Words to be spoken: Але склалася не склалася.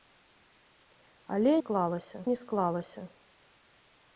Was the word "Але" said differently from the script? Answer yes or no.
no